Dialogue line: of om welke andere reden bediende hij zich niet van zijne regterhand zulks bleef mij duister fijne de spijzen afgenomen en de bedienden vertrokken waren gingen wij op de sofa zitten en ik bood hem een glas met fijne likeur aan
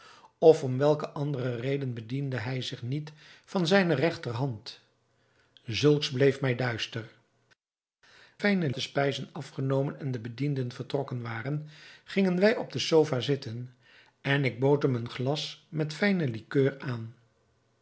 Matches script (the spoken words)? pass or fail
pass